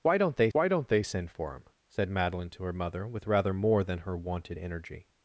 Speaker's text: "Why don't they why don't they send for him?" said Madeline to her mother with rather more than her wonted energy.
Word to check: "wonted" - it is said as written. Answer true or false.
true